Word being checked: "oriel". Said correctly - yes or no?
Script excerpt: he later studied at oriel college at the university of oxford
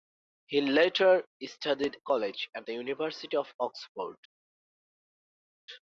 no